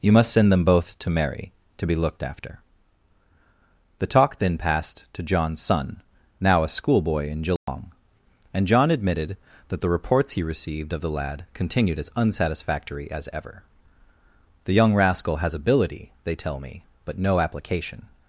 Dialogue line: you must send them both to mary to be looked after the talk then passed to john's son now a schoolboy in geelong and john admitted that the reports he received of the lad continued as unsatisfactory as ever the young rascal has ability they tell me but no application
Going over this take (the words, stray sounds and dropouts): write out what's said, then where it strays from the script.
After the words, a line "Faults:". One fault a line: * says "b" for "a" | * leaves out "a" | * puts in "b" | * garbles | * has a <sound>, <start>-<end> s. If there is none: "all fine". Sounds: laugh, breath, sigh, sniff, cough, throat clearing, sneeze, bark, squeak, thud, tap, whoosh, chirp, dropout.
you must send them both to mary to be looked after the talk then passed to john's son now a schoolboy in geelong and john admitted that the reports he received of the lad continued as unsatisfactory as ever the young rascal has ability they tell me but no application
Faults:
* has a dropout, 7.6-7.7 s